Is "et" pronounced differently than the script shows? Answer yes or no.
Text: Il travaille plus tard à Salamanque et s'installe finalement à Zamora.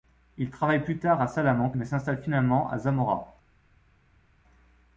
yes